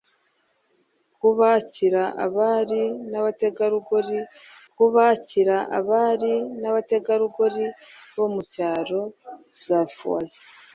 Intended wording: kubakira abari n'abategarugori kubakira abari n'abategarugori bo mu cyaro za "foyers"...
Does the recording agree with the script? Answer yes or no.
yes